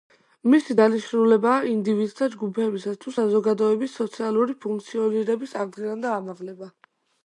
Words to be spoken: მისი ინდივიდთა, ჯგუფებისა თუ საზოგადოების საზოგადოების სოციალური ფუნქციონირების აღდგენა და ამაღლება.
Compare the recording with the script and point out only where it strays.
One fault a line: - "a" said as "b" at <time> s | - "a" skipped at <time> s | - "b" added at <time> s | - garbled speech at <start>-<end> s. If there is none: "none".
- "დანიშნულებაა" added at 0.8 s
- "საზოგადოების" skipped at 4.0 s